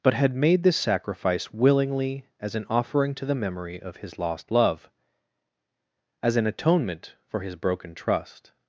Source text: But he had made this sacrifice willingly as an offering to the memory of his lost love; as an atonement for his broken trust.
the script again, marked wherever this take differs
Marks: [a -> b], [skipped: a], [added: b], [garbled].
But [skipped: he] had made this sacrifice willingly as an offering to the memory of his lost love; as an atonement for his broken trust.